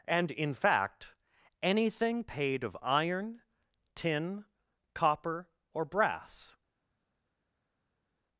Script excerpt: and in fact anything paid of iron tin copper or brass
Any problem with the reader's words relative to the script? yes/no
no